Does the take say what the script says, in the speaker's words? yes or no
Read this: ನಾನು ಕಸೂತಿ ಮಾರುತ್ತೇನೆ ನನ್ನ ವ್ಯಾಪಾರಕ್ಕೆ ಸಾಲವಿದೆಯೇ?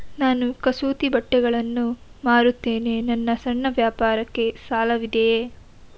no